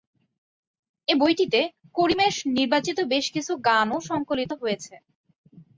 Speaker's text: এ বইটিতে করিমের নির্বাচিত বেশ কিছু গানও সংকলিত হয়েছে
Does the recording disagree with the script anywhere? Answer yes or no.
no